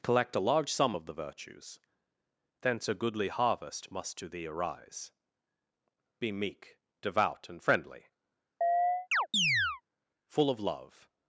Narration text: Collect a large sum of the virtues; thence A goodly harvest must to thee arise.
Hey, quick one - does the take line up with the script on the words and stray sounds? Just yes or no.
no